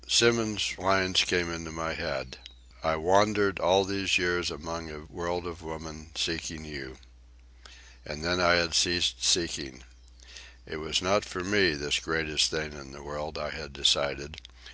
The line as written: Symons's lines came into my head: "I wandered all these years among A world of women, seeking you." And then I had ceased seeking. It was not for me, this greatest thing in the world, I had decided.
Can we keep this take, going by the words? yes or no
yes